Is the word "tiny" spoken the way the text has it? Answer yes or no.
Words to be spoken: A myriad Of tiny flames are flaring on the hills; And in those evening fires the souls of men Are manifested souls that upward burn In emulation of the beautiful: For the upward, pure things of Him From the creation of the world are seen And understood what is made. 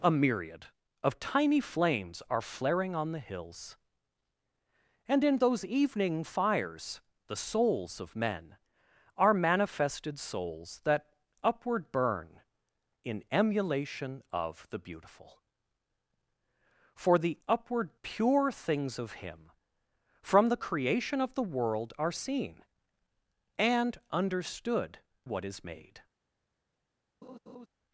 yes